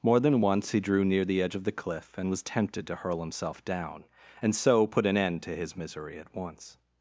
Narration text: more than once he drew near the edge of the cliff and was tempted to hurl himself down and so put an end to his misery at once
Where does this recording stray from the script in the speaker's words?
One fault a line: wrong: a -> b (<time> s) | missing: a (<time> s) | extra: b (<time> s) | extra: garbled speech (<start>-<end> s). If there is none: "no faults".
no faults